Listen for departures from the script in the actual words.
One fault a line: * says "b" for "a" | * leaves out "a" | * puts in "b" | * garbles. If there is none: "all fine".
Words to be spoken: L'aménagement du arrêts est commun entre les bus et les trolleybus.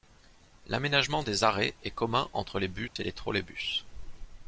* says "des" for "du"